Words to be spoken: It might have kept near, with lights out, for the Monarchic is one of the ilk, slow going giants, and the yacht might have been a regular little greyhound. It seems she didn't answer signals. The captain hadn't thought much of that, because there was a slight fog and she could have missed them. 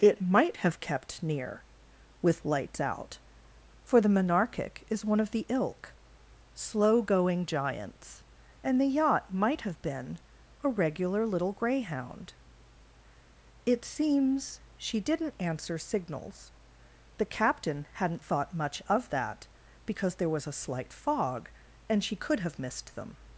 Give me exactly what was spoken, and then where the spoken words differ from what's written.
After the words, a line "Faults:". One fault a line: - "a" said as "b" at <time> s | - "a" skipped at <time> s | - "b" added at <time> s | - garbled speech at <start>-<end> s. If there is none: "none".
It might have kept near, with lights out, for the Monarchic is one of the ilk, slow going giants, and the yacht might have been a regular little greyhound. It seems she didn't answer signals. The captain hadn't thought much of that, because there was a slight fog and she could have missed them.
Faults:
none